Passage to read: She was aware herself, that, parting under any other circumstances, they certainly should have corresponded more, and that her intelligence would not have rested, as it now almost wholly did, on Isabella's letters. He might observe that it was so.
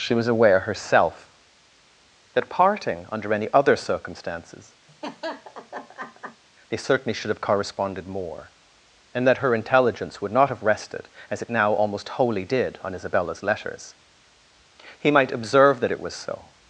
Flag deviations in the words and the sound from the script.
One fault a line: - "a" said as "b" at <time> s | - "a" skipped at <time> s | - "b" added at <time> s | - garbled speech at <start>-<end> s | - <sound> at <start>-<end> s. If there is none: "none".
- laugh at 4.9-6.4 s